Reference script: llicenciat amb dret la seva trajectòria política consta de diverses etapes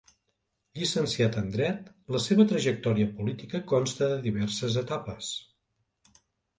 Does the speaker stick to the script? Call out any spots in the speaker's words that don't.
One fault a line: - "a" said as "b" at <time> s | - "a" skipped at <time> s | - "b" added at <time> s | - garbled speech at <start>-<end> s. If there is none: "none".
- "amb" said as "en" at 1.4 s